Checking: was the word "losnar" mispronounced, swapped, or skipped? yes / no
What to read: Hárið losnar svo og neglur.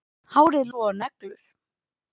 yes